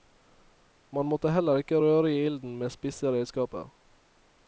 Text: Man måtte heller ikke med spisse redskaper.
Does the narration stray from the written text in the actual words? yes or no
yes